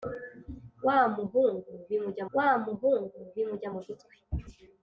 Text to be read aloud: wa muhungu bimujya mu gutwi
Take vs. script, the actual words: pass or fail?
fail